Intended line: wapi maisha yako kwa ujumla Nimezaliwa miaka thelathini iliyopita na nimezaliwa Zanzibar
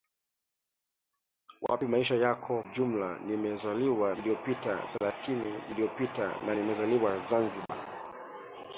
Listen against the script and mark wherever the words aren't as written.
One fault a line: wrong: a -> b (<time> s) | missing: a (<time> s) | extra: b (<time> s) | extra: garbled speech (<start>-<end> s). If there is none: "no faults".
missing: kwa (2.6 s)
wrong: miaka -> iliyopita (4.2 s)